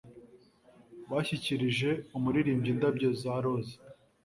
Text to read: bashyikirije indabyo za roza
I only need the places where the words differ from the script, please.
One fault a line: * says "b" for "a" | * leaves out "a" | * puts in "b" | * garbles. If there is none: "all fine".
* puts in "umuririmbyi"